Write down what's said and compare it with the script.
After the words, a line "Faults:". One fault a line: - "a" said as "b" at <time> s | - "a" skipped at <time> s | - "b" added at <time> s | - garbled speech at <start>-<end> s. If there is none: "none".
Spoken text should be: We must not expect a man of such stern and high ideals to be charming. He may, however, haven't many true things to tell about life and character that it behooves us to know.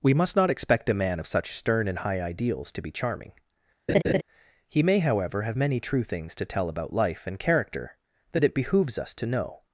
We must not expect a man of such stern and high ideals to be charming. He may, however, have many true things to tell about life and character that it behooves us to know.
Faults:
- "haven't" said as "have" at 5.4 s